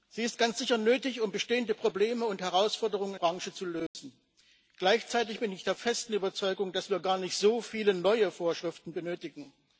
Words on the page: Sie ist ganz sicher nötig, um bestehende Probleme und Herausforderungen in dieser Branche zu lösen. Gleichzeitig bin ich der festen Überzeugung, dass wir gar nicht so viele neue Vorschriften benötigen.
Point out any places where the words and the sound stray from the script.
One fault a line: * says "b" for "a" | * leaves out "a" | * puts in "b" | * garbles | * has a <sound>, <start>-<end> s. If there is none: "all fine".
* leaves out "in dieser"
* has a dropout, 3.9-3.9 s